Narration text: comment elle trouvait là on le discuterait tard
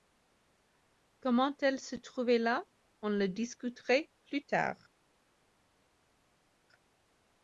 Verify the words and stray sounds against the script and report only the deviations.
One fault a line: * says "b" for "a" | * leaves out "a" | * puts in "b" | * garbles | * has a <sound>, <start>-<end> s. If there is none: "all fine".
* puts in "se"
* puts in "plus"